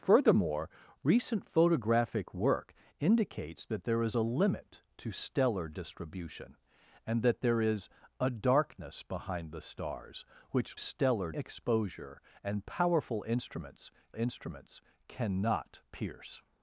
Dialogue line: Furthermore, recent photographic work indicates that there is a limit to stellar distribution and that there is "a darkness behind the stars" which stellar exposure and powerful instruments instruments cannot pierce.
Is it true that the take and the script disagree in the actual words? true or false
false